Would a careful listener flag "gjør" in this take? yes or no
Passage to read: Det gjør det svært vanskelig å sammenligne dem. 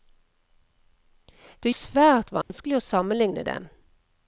yes